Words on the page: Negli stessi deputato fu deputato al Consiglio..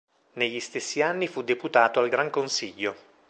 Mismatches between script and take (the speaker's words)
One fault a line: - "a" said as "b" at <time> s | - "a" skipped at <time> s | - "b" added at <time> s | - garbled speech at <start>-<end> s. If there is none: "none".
- "deputato" said as "anni" at 1.0 s
- "Gran" added at 2.1 s